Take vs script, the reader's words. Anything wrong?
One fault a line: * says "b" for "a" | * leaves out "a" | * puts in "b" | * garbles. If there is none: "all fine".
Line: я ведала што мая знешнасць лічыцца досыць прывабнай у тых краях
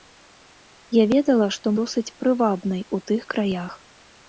* leaves out "мая знешнасць лічыцца"